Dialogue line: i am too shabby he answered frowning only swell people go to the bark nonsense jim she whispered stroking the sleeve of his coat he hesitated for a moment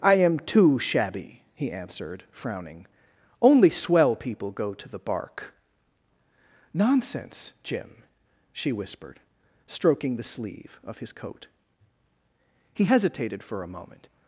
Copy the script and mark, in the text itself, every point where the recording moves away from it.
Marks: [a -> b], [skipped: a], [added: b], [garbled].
i am too shabby he answered frowning only swell people go to the bark nonsense jim she whispered stroking the sleeve of his coat he hesitated for a moment